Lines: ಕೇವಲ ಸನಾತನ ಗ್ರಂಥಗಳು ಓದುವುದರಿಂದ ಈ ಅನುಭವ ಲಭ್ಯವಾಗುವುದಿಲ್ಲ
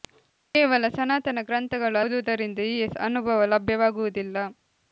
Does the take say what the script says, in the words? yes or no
yes